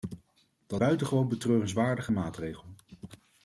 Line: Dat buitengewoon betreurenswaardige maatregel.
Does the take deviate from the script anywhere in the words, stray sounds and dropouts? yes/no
no